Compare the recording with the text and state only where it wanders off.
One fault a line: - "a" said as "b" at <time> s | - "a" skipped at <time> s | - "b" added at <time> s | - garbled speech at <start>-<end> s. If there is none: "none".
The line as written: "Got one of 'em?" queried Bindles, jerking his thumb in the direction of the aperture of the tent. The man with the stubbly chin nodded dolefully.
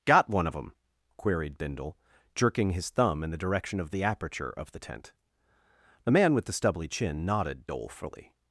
- "Bindles" said as "Bindle" at 1.6 s